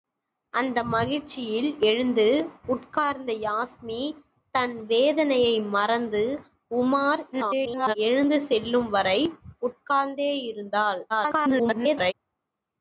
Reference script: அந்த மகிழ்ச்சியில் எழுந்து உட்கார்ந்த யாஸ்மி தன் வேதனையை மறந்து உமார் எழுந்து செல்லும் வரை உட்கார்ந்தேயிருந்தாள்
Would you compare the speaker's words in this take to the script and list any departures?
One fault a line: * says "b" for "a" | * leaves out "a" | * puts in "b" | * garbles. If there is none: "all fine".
* garbles
* garbles